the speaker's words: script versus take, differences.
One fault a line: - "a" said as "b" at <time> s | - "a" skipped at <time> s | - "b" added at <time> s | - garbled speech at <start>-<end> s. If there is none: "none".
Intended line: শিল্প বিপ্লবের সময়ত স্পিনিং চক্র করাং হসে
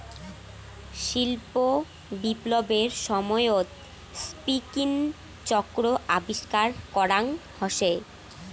- "আবিষ্কার" added at 6.2 s